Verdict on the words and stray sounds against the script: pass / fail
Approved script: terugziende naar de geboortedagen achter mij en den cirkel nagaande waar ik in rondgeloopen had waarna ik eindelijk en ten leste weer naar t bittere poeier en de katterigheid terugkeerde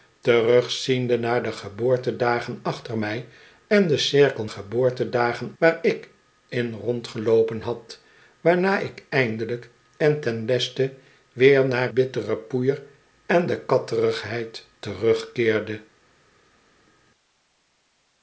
fail